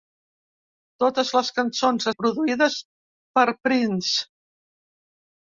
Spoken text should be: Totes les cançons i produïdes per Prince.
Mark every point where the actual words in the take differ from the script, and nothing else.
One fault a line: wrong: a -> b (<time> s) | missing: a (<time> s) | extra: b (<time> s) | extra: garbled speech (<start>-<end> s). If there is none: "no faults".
no faults